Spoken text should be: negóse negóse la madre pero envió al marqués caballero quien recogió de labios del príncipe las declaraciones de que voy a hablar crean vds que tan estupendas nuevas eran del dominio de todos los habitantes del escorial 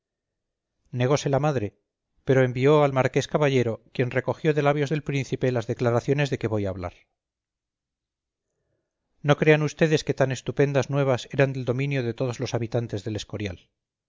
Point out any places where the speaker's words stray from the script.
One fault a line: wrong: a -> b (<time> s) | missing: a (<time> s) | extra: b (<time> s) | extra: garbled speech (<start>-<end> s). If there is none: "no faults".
missing: negóse (1.3 s)
extra: no (9.2 s)